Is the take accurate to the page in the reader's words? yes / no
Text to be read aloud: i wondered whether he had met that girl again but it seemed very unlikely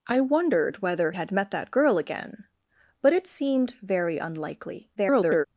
no